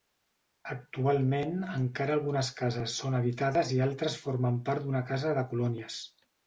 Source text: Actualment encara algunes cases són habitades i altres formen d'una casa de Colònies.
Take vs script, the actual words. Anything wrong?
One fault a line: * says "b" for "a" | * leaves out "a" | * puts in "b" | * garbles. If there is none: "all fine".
* puts in "part"